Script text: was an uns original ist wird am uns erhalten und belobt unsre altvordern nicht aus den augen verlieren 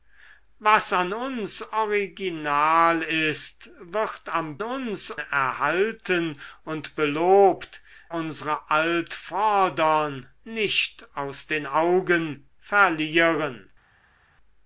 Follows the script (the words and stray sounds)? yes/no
yes